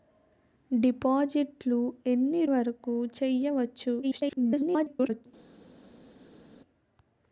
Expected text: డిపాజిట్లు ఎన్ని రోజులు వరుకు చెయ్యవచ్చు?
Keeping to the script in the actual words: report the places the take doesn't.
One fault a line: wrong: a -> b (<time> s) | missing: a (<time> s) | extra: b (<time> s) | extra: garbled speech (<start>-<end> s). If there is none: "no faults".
missing: రోజులు (2.5 s)
extra: garbled speech (4.0-5.3 s)